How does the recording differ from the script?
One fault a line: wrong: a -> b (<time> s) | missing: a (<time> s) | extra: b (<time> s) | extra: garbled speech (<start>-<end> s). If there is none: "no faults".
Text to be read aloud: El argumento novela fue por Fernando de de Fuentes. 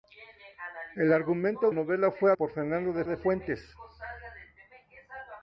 no faults